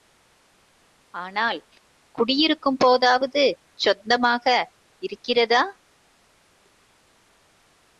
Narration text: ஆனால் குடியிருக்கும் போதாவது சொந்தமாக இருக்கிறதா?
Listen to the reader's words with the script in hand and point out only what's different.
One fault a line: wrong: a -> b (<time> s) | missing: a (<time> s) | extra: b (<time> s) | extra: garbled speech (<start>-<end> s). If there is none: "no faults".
no faults